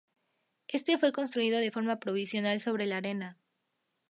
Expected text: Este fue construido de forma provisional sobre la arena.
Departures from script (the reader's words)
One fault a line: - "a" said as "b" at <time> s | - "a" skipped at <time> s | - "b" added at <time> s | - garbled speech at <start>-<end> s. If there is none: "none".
none